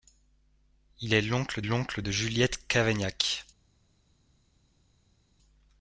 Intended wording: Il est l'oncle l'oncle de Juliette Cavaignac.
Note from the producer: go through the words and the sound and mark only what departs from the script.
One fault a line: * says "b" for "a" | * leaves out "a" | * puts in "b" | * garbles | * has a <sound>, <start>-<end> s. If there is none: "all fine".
all fine